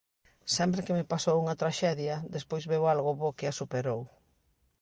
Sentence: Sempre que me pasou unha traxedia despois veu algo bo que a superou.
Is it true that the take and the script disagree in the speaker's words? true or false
false